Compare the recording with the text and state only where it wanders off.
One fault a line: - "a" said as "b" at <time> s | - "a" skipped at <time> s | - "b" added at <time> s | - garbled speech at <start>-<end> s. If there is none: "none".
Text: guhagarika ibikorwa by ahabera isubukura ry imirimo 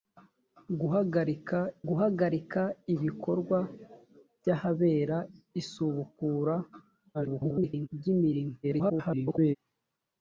- "guhagarika" added at 1.9 s
- garbled speech at 7.1-7.9 s
- garbled speech at 8.6-9.6 s